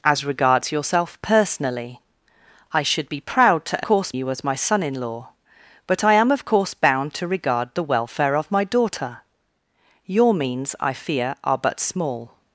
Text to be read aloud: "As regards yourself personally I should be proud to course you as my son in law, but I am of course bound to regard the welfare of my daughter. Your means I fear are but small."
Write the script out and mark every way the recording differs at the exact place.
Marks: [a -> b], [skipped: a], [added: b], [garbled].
"As regards yourself personally I should be proud to course you as my son in law, but I am of course bound to regard the welfare of my daughter. Your means I fear are but small."